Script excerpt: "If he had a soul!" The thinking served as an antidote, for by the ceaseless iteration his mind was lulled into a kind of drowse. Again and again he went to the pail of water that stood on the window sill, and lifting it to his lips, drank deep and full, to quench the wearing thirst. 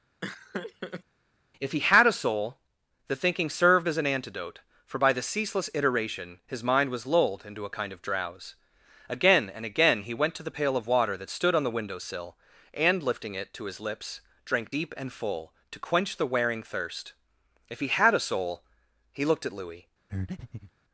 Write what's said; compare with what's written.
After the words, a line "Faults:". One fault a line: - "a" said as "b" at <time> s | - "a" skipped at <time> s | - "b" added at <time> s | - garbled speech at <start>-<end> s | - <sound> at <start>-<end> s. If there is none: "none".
"If he had a soul!" The thinking served as an antidote, for by the ceaseless iteration his mind was lulled into a kind of drowse. Again and again he went to the pail of water that stood on the window sill, and lifting it to his lips, drank deep and full, to quench the wearing thirst. "If he had a soul!" He looked at Louis
Faults:
- laugh at 0.2-1.0 s
- "If he had a soul He looked at Louis" added at 17.7 s
- breath at 20.1-20.7 s